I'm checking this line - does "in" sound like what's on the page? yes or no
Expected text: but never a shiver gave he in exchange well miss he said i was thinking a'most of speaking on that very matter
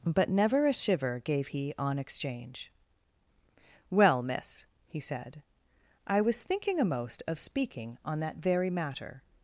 no